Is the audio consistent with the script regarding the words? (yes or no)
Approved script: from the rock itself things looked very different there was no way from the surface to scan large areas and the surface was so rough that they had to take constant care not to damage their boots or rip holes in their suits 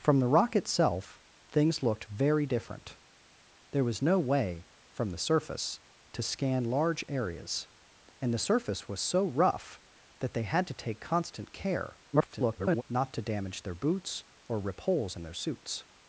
no